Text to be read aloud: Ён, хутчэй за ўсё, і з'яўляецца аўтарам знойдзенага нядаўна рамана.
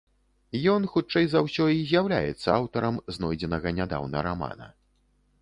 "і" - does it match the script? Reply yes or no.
yes